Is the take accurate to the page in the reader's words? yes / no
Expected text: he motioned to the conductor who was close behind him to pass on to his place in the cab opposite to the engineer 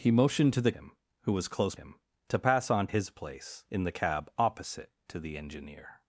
no